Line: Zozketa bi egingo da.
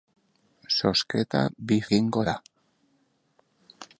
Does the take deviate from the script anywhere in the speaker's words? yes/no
no